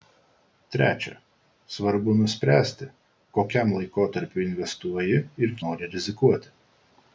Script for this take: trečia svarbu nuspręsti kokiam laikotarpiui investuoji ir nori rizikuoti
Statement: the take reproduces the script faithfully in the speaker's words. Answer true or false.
true